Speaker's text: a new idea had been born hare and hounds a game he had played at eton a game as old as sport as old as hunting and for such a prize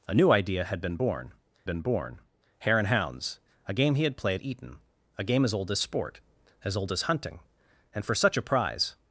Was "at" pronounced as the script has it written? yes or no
no